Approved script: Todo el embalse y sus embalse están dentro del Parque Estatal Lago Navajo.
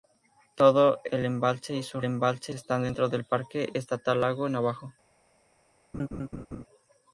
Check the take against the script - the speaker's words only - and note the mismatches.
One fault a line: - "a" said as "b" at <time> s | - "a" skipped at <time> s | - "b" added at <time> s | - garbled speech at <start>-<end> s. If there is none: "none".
none